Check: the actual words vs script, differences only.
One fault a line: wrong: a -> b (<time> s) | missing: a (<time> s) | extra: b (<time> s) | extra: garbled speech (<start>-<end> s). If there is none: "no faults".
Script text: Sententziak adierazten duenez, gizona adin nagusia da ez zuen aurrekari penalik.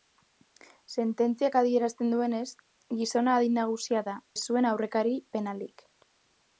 no faults